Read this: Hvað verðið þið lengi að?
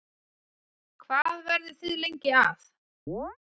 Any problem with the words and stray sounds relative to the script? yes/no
yes